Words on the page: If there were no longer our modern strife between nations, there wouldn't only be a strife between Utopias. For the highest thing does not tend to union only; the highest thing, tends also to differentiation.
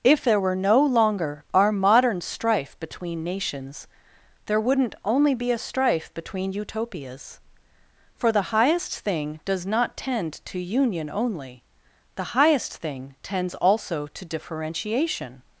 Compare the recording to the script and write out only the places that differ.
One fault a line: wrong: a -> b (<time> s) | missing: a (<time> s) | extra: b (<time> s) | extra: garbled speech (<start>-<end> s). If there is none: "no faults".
no faults